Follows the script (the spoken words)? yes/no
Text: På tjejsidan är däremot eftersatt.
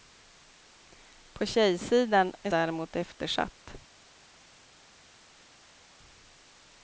yes